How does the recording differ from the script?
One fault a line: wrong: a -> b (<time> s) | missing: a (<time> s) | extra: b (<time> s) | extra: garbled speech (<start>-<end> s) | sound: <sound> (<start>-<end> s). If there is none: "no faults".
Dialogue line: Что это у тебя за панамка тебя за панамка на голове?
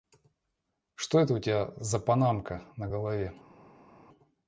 missing: тебя за панамка (2.6 s)